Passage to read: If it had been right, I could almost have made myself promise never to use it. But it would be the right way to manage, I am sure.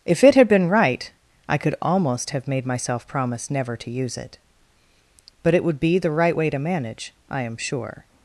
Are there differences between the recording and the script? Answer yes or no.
no